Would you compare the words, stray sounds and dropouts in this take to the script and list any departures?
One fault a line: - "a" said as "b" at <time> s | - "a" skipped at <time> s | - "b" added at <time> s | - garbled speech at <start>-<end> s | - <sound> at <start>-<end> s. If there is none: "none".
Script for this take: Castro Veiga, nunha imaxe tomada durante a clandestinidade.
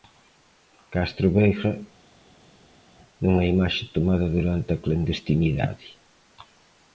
none